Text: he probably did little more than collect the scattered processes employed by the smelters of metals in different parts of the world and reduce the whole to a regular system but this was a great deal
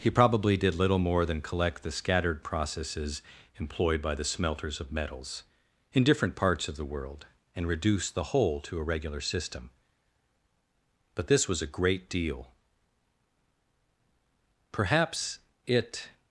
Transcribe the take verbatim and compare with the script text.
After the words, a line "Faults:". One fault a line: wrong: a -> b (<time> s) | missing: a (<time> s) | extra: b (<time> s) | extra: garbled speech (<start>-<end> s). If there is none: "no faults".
he probably did little more than collect the scattered processes employed by the smelters of metals in different parts of the world and reduce the whole to a regular system but this was a great deal perhaps it
Faults:
extra: perhaps it (14.7 s)